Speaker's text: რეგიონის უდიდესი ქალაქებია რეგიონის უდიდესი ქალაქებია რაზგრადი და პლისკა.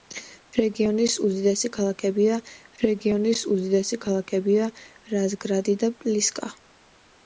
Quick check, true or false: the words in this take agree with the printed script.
true